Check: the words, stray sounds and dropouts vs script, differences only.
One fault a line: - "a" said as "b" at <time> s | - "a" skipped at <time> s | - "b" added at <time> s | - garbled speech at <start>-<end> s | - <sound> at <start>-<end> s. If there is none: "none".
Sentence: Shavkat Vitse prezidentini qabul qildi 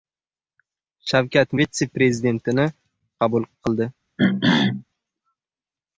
- throat clearing at 4.2-4.8 s